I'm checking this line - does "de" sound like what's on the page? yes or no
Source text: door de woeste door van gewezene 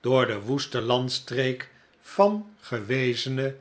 yes